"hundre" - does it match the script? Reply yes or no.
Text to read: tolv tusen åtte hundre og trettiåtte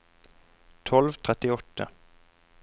no